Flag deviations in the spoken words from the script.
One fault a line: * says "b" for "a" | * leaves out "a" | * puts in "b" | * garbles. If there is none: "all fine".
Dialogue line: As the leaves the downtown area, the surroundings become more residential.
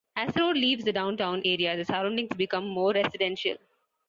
* puts in "road"